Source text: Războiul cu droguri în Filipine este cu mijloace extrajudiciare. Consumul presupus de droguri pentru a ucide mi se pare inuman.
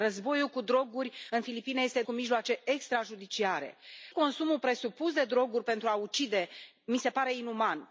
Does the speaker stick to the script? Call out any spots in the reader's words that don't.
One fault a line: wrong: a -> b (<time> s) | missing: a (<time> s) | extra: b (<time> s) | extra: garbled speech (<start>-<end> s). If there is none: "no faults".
no faults